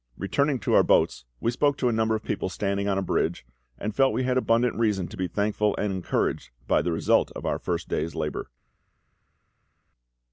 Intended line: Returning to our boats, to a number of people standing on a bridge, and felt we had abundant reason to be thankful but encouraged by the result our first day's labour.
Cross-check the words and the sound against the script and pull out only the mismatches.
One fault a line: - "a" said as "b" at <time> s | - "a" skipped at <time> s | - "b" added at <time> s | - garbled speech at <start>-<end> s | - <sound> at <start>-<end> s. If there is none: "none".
- "we spoke" added at 1.4 s
- "but" said as "and" at 5.8 s
- "of" added at 7.3 s